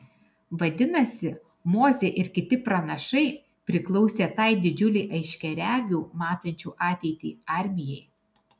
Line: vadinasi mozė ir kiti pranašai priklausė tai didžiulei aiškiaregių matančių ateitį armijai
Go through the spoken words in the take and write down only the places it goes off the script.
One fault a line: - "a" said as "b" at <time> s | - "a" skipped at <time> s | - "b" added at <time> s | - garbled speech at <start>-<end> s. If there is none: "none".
none